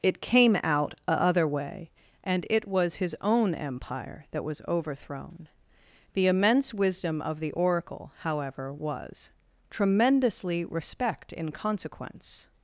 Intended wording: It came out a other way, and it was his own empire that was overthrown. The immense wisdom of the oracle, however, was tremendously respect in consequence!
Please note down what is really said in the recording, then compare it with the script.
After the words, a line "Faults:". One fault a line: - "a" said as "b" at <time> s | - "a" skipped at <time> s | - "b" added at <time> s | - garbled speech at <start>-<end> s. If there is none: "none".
It came out a other way, and it was his own empire that was overthrown. The immense wisdom of the oracle, however, was tremendously respect in consequence!
Faults:
none